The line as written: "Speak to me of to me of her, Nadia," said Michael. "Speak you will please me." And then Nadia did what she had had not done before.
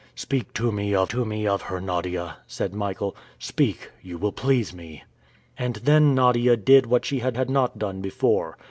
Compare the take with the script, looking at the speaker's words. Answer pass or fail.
pass